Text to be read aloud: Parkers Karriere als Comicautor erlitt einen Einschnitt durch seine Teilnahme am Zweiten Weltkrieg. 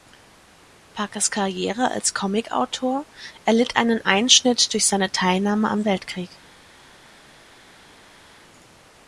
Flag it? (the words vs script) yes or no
yes